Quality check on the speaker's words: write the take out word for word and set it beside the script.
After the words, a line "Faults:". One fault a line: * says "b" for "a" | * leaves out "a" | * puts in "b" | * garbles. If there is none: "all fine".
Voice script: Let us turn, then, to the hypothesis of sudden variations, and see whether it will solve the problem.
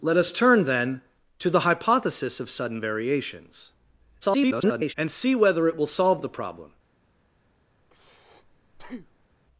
Let us turn, then, to the hypothesis of sudden variations, [garbled] and see whether it will solve the problem.
Faults:
* garbles